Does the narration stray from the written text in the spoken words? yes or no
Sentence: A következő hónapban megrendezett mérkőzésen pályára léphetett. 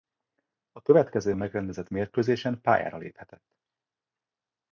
yes